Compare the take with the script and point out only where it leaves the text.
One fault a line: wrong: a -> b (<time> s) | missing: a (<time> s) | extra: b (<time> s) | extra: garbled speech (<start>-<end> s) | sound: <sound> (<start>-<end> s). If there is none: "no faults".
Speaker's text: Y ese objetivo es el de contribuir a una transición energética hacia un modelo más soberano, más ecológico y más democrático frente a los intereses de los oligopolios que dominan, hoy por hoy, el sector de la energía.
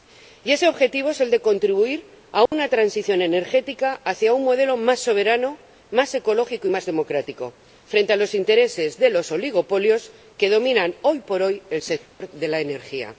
sound: dropout (2.5-2.5 s)
sound: dropout (12.1-12.2 s)